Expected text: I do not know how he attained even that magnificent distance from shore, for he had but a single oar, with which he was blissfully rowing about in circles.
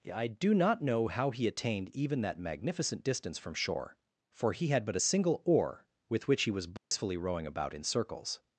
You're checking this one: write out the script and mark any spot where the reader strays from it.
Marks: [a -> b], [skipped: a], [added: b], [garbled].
I do not know how he attained even that magnificent distance from shore, for he had but a single oar, with which he was blissfully rowing about in circles.